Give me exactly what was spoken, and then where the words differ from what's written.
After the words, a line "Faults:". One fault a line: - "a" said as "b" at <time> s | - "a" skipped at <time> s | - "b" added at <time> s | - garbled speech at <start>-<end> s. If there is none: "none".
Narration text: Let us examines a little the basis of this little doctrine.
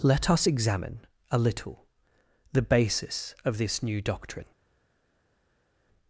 Let us examine a little the basis of this new doctrine.
Faults:
- "examines" said as "examine" at 0.5 s
- "little" said as "new" at 3.8 s